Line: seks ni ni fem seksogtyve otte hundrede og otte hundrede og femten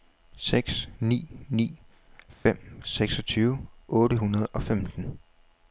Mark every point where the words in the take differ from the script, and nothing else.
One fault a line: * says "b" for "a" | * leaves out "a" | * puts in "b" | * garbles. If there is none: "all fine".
* leaves out "otte hundrede og"